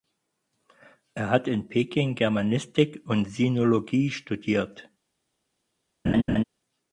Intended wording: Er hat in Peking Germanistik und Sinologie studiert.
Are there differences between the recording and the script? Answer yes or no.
no